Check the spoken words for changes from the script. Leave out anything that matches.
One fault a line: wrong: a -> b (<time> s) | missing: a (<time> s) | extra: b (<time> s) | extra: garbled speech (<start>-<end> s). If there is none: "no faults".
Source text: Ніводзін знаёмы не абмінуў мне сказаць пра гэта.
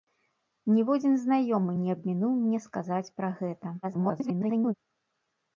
extra: garbled speech (3.8-4.7 s)